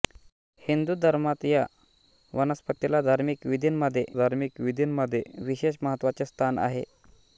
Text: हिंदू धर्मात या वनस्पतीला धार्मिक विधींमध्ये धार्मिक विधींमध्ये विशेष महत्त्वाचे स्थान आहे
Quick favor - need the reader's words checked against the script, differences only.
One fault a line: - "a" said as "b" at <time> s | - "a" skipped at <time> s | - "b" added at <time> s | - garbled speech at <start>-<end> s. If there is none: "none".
none